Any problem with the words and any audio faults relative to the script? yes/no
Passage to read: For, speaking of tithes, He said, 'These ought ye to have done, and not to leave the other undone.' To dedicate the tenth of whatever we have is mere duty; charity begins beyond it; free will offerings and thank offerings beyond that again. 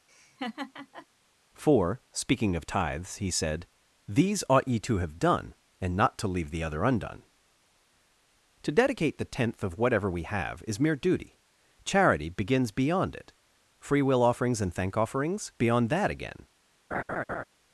yes